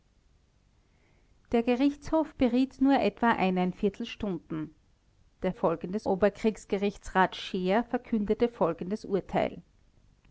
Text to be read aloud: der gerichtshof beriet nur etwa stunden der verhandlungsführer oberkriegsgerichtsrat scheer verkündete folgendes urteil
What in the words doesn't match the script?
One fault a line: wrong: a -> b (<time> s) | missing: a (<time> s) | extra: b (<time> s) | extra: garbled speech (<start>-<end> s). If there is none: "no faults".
wrong: verhandlungsführer -> folgendes (5.5 s)